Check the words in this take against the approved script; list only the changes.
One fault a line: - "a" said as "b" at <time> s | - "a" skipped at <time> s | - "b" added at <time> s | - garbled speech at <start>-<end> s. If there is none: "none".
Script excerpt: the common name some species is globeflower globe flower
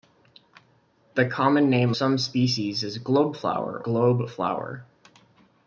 none